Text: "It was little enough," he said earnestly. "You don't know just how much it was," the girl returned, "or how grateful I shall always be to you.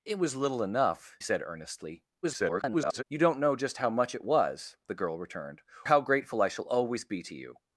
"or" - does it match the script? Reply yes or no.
no